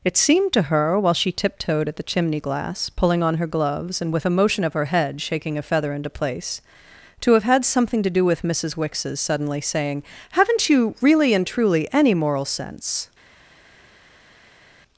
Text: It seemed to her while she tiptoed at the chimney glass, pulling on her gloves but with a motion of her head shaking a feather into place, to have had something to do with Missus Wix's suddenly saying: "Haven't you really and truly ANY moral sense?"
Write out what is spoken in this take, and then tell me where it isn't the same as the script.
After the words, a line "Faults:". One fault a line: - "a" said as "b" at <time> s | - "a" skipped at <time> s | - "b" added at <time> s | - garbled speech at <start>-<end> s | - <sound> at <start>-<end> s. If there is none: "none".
It seemed to her while she tiptoed at the chimney glass, pulling on her gloves and with a motion of her head shaking a feather into place, to have had something to do with Missus Wix's suddenly saying: "Haven't you really and truly ANY moral sense?"
Faults:
- "but" said as "and" at 4.0 s